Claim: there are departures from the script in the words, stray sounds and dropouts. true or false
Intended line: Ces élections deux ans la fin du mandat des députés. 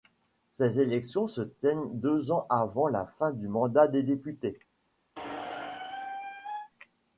true